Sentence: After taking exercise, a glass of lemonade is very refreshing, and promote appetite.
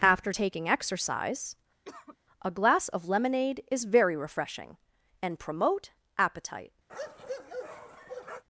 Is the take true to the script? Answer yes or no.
yes